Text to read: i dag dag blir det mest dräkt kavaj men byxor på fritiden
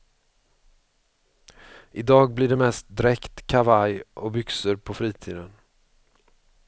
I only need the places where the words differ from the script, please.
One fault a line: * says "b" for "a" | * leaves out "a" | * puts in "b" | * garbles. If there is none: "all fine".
* leaves out "dag"
* says "och" for "men"